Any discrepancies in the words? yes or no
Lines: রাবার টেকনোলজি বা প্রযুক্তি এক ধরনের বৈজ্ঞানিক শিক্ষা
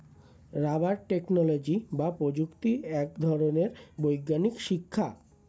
no